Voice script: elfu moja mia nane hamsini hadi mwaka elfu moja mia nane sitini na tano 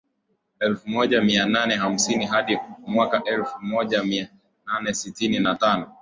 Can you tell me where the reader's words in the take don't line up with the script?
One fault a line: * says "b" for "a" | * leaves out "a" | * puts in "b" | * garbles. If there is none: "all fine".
all fine